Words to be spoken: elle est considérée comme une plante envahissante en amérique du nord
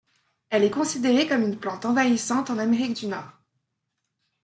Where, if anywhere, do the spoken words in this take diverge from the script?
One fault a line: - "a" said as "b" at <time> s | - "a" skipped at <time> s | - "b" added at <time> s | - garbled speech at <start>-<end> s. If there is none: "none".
none